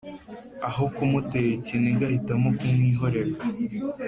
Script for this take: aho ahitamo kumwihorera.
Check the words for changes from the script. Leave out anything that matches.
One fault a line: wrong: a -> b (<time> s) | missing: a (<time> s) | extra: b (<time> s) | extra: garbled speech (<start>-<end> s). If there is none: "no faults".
extra: kumutera ikiniga (0.9 s)